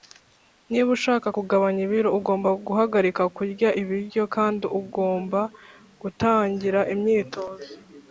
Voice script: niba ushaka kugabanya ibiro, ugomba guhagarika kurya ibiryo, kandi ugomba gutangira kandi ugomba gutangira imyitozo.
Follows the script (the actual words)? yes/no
no